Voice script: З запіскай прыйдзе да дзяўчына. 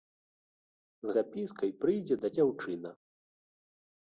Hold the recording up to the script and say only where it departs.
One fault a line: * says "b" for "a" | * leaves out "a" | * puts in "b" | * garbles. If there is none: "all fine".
all fine